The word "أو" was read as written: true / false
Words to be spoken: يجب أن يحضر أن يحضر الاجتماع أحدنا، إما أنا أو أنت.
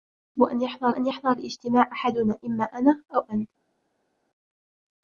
true